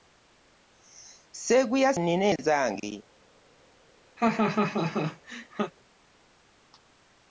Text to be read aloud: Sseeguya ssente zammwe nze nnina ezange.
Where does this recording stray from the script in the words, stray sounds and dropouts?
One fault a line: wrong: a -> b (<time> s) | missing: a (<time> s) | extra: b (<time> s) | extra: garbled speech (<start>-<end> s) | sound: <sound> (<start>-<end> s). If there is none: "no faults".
missing: ssente zammwe nze (1.9 s)
sound: laugh (4.2-5.7 s)